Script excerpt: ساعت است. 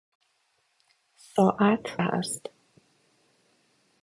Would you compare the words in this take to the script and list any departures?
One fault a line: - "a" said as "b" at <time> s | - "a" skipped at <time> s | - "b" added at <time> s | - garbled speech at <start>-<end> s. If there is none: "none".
none